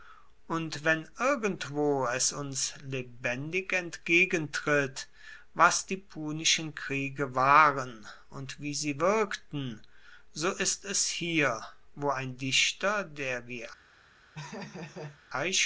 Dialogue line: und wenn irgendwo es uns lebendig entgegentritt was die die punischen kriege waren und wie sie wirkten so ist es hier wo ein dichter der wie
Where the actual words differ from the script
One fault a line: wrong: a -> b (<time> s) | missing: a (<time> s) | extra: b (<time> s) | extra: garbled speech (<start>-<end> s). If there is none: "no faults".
missing: die (6.0 s)